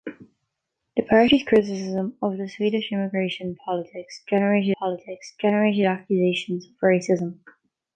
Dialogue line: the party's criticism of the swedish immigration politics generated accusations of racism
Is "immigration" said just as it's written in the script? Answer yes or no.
yes